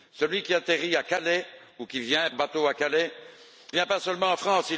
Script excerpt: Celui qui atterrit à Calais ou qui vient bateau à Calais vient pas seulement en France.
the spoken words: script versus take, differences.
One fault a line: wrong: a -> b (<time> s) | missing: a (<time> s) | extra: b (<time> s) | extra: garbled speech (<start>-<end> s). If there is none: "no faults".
no faults